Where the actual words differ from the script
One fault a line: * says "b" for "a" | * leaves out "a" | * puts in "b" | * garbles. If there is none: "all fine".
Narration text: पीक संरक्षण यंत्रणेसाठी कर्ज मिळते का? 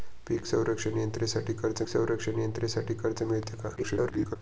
* puts in "संरक्षण यंत्रणेसाठी कर्ज"
* garbles